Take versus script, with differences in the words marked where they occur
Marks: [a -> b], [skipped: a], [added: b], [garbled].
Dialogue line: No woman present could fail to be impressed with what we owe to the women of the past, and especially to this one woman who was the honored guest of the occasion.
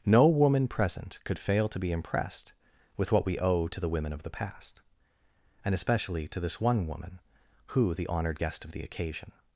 No woman present could fail to be impressed with what we owe to the women of the past, and especially to this one woman who [skipped: was] the honored guest of the occasion.